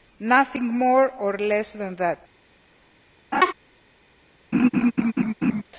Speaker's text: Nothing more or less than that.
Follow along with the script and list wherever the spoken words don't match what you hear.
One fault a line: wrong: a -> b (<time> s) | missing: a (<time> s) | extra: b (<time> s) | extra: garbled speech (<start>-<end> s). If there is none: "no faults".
no faults